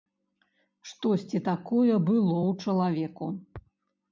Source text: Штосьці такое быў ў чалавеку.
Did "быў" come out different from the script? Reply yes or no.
yes